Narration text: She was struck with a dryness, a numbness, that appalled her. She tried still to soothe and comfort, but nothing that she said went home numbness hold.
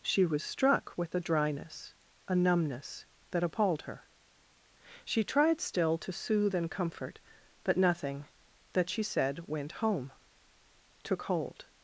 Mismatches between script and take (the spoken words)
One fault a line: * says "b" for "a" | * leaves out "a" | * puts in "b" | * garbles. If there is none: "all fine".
* says "took" for "numbness"